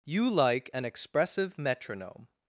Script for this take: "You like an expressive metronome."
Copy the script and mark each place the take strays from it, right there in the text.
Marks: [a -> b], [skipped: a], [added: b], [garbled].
"You like an expressive metronome."